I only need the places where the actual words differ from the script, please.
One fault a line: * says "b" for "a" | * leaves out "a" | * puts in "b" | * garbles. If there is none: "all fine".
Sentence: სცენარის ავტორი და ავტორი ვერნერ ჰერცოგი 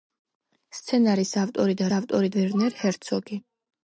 all fine